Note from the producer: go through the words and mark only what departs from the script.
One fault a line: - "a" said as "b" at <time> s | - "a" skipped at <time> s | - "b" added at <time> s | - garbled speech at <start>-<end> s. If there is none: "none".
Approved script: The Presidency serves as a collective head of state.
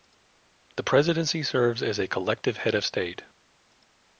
none